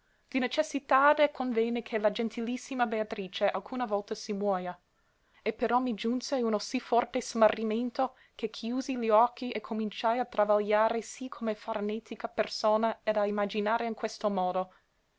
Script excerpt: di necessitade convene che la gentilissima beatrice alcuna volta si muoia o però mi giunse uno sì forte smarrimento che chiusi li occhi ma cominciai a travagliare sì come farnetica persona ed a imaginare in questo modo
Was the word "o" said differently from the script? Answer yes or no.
yes